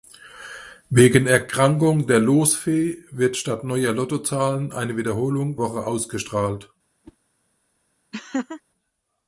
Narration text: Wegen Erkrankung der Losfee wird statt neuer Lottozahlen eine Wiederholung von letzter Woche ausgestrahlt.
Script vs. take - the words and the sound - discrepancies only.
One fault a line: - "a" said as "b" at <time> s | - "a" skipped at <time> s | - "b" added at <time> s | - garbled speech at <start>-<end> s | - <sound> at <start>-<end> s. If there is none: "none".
- "von letzter" skipped at 5.6 s
- whoosh at 7.0-7.2 s
- laugh at 8.1-8.6 s